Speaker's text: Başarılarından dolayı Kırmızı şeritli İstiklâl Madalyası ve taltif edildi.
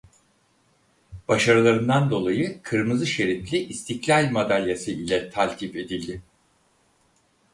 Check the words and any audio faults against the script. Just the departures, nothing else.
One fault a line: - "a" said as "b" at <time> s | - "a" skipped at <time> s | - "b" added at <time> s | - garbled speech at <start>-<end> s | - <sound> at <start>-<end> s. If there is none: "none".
- "ve" said as "ile" at 4.9 s